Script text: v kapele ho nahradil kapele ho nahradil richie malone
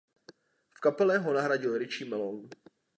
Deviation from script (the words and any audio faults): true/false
true